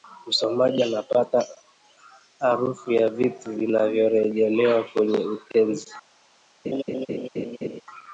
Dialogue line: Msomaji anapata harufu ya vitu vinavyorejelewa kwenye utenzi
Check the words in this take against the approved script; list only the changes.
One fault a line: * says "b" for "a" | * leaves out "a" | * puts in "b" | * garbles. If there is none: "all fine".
all fine